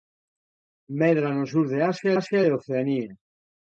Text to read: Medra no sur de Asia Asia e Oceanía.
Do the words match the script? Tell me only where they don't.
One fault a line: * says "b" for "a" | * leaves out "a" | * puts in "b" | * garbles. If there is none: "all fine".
all fine